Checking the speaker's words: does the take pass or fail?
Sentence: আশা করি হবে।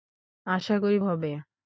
pass